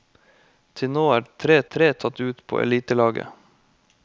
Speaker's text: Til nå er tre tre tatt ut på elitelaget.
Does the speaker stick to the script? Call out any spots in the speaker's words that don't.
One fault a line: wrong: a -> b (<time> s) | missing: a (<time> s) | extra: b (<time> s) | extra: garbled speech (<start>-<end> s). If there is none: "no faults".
no faults